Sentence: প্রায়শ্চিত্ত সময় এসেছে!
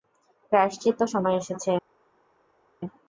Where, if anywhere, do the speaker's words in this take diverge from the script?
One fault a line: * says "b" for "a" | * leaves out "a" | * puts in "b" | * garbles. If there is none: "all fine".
all fine